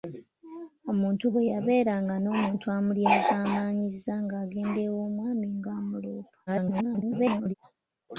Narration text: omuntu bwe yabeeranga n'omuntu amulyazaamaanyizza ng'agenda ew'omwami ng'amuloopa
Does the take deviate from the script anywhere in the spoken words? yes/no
yes